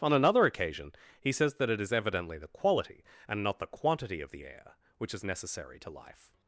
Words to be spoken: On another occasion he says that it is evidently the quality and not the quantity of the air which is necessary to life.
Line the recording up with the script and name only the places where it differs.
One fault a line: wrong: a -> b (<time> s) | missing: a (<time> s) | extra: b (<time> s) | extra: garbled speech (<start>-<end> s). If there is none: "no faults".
no faults